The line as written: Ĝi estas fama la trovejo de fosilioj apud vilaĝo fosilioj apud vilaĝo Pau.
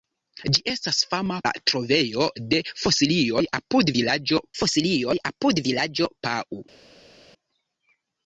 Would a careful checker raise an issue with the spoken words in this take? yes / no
no